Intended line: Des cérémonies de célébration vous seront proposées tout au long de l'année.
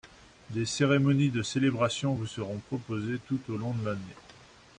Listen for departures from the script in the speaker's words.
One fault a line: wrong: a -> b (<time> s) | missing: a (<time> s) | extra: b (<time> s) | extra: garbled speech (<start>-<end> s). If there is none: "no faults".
no faults